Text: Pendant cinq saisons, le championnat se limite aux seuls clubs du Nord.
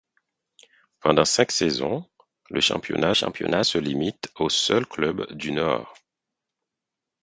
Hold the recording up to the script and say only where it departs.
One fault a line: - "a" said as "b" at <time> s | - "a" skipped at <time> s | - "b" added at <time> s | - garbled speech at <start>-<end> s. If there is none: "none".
- "championnat" added at 3.1 s